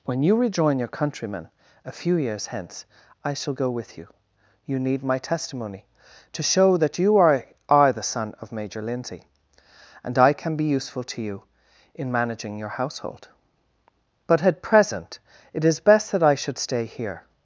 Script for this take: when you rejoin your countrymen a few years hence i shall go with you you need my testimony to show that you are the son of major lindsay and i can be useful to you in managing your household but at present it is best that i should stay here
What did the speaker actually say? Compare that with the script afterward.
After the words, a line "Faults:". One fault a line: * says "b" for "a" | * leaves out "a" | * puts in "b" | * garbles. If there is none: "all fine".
when you rejoin your countrymen a few years hence i shall go with you you need my testimony to show that you are are the son of major lindsay and i can be useful to you in managing your household but at present it is best that i should stay here
Faults:
* puts in "are"